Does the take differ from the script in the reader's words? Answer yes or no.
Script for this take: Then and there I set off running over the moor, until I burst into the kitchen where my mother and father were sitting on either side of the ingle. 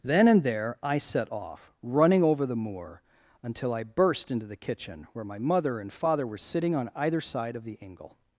no